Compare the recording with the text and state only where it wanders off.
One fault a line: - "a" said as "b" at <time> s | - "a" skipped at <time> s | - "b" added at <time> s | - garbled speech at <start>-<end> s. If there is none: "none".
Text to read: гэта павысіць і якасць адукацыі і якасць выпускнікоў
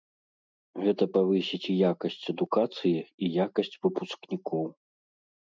none